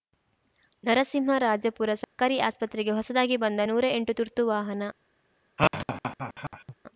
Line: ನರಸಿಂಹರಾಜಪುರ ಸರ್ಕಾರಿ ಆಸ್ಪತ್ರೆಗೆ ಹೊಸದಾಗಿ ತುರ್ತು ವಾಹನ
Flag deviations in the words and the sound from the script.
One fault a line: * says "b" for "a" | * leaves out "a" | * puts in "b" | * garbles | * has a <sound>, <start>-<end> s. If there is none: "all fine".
* has a dropout, 2.0-2.2 s
* puts in "ಬಂದ ನೂರಾ ಎಂಟು"
* has a laugh, 5.6-6.7 s